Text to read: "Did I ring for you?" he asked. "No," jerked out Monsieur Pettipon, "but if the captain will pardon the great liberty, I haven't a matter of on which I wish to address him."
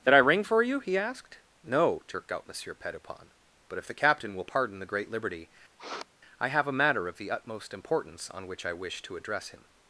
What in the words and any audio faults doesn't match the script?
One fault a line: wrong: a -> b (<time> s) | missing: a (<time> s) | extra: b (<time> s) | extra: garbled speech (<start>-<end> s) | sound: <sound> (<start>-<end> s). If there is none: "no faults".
sound: sniff (5.8-6.1 s)
wrong: haven't -> have (6.5 s)
extra: the utmost importance (7.2 s)